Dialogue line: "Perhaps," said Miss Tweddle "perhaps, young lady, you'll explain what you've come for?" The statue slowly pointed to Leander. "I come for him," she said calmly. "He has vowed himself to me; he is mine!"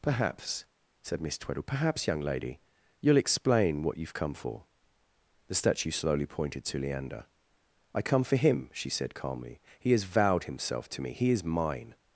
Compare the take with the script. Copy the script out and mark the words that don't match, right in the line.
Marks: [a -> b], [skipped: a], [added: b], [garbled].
"Perhaps," said Miss Tweddle "perhaps, young lady, you'll explain what you've come for?" The statue slowly pointed to Leander. "I come for him," she said calmly. "He has vowed himself to me; he is mine!"